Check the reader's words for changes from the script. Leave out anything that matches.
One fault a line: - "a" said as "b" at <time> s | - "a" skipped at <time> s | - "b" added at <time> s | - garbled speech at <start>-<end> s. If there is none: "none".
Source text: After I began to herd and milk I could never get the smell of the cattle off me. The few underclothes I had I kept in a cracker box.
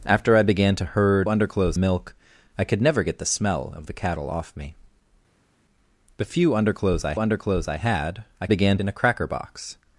- "and" said as "underclothes" at 1.3 s
- "underclothes I" added at 7.2 s
- "kept" said as "began" at 8.5 s